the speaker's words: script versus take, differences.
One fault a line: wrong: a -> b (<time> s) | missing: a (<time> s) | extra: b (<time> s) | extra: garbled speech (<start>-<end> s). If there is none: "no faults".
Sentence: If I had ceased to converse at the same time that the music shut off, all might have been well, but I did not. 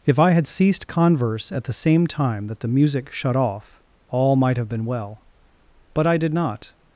missing: to (0.9 s)